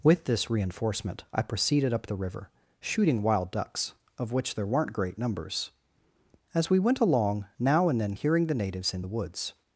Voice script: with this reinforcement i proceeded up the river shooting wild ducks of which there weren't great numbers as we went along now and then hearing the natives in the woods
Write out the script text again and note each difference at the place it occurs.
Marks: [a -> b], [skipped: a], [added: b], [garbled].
with this reinforcement i proceeded up the river shooting wild ducks of which there weren't great numbers as we went along now and then hearing the natives in the woods